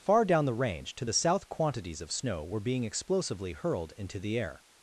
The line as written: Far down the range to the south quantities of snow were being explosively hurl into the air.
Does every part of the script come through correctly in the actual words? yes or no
no